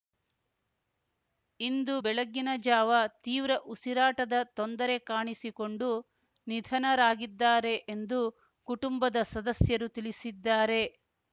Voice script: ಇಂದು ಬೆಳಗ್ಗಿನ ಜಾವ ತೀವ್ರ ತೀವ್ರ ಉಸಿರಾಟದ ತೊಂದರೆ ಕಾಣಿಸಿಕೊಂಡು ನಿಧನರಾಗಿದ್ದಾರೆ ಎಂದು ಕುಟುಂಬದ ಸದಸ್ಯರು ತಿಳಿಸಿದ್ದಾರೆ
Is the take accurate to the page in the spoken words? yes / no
no